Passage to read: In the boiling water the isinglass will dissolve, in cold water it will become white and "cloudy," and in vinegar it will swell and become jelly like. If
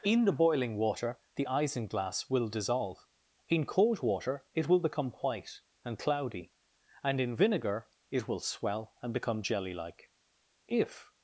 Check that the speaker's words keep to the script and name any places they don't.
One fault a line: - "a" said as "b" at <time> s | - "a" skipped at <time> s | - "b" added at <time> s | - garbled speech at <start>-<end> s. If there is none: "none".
none